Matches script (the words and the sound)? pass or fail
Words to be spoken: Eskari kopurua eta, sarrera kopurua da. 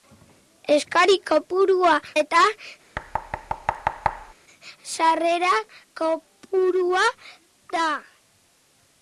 fail